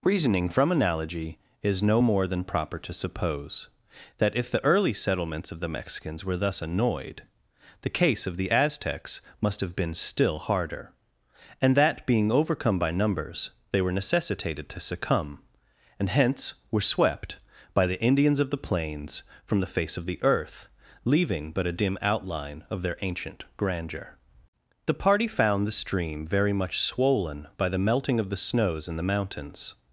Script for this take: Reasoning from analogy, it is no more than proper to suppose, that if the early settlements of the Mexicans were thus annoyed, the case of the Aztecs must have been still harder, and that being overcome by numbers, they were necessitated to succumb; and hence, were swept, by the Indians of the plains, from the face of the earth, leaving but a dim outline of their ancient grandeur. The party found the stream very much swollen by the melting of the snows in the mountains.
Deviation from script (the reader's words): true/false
true